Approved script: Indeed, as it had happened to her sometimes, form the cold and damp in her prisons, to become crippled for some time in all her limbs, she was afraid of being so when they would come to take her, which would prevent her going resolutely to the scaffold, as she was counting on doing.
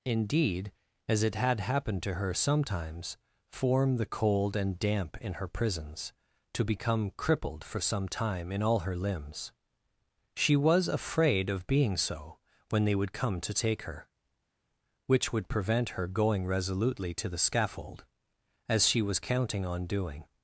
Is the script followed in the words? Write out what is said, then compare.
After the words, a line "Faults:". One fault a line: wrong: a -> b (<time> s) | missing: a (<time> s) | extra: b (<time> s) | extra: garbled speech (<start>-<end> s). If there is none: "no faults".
Indeed, as it had happened to her sometimes, form the cold and damp in her prisons, to become crippled for some time in all her limbs, she was afraid of being so when they would come to take her, which would prevent her going resolutely to the scaffold, as she was counting on doing.
Faults:
no faults